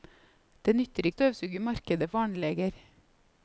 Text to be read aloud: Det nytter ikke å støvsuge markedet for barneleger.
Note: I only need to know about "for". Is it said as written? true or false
false